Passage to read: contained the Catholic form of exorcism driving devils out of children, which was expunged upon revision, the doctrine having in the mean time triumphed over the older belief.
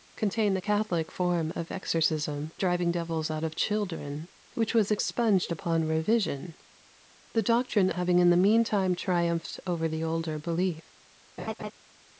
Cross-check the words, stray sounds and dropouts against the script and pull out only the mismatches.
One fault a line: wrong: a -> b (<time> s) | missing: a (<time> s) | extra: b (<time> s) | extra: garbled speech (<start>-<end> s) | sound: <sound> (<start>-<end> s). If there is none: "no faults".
sound: laugh (11.4-11.7 s)